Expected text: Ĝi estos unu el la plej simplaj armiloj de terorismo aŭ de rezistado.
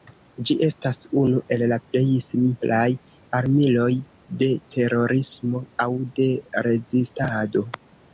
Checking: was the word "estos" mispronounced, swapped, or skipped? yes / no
yes